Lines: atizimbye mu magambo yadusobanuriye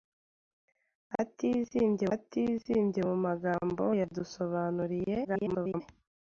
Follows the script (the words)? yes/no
no